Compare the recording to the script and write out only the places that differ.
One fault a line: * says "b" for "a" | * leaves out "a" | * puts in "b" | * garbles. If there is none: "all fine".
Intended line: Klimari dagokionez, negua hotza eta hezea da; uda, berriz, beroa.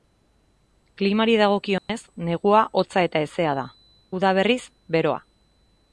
all fine